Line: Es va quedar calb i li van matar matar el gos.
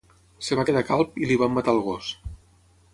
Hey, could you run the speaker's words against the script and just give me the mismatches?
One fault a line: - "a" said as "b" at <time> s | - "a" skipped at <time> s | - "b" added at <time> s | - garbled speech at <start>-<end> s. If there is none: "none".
- "matar" skipped at 1.8 s